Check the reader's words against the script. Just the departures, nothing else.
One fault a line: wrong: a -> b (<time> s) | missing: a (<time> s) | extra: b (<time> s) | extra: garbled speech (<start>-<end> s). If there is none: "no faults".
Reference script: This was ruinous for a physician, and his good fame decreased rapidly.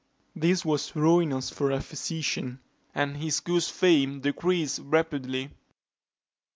no faults